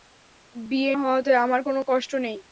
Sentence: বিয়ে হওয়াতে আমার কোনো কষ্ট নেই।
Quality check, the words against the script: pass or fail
pass